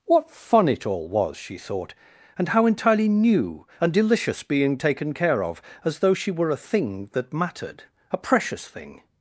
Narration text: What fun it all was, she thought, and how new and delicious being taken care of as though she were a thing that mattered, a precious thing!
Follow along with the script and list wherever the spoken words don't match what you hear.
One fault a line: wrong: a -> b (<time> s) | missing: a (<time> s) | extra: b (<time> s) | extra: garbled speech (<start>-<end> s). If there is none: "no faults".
extra: entirely (2.7 s)